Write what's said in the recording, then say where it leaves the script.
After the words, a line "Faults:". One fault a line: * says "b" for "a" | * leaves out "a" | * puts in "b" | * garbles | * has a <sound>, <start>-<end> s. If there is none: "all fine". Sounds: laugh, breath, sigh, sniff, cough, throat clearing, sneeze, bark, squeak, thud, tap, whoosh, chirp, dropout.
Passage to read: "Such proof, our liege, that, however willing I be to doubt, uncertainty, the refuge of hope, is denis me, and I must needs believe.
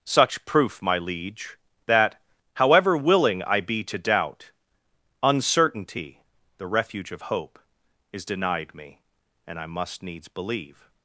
"Such proof, my liege, that, however willing I be to doubt, uncertainty, the refuge of hope, is denied me, and I must needs believe.
Faults:
* says "my" for "our"
* says "denied" for "denis"